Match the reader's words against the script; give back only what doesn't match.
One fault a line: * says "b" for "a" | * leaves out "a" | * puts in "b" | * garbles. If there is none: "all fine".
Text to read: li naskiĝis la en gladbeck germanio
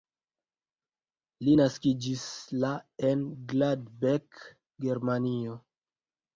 all fine